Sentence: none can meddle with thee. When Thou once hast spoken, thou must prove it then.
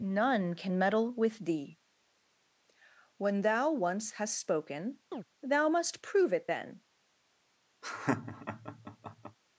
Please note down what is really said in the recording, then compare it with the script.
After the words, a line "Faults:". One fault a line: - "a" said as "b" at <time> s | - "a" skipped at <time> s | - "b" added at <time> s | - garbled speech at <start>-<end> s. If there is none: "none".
none can meddle with thee. When Thou once hast spoken, thou must prove it then.
Faults:
none